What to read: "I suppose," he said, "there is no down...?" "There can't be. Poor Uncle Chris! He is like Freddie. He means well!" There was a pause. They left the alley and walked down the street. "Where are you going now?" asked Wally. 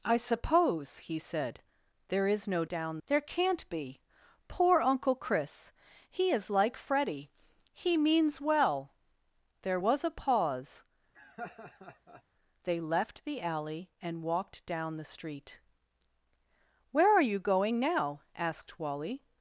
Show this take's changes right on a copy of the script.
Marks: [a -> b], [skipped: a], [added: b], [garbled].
"I suppose," he said, "there is no down...?" "There can't be. Poor Uncle Chris! He is like Freddie. He means well!" There was a pause. They left the alley and walked down the street. "Where are you going now?" asked Wally.